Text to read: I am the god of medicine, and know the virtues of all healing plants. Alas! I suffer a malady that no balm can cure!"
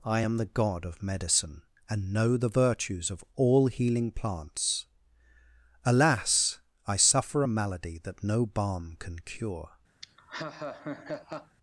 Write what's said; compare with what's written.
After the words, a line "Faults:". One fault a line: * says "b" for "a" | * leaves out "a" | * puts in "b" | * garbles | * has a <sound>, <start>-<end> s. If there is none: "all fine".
I am the god of medicine, and know the virtues of all healing plants. Alas! I suffer a malady that no balm can cure!"
Faults:
* has a laugh, 10.0-11.6 s